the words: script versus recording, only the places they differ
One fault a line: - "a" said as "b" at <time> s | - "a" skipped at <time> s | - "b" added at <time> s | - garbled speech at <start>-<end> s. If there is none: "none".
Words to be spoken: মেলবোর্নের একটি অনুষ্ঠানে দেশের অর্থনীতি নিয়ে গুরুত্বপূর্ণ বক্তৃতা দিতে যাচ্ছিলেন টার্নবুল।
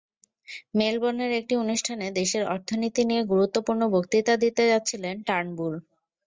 none